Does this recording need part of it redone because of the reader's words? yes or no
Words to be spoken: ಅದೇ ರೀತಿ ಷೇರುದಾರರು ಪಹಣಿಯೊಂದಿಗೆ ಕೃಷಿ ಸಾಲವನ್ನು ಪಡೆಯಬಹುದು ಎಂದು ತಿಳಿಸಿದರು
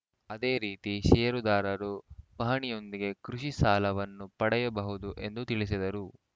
no